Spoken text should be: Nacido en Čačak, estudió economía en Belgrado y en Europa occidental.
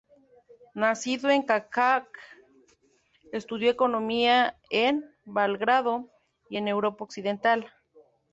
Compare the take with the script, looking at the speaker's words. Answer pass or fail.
pass